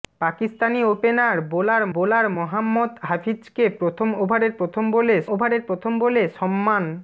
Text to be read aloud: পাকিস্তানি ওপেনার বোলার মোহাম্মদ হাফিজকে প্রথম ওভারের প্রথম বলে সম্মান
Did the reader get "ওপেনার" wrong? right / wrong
right